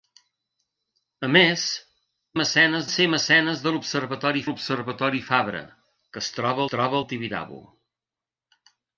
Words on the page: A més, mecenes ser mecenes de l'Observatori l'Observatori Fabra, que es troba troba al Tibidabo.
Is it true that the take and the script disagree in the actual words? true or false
false